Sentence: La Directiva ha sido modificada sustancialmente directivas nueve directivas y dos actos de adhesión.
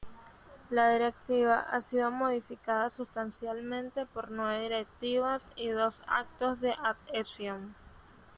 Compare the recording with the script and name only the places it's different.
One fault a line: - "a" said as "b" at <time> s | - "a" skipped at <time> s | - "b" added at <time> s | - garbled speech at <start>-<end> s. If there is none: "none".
- "directivas" said as "por" at 4.1 s